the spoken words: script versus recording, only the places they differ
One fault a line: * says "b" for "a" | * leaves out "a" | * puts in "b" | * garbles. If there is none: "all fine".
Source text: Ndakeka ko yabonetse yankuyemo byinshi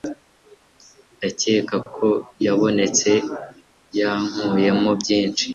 all fine